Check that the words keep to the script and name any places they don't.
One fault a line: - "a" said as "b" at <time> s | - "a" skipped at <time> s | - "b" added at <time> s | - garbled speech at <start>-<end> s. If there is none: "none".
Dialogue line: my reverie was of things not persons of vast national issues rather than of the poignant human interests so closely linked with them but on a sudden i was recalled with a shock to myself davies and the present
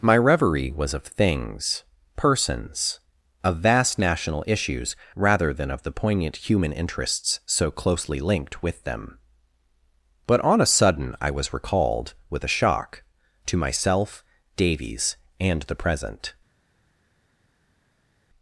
- "not" skipped at 1.8 s